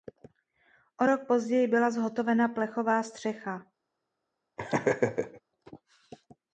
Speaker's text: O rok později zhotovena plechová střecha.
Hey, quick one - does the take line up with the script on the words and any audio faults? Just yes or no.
no